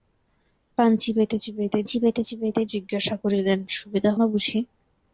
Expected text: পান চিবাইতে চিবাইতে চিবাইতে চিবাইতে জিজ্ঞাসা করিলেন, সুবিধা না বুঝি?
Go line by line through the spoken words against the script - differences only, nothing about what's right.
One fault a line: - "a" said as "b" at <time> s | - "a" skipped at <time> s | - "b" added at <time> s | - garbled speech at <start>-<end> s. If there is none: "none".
none